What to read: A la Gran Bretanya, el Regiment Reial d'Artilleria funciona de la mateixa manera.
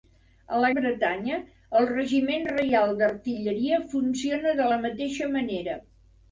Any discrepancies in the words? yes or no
yes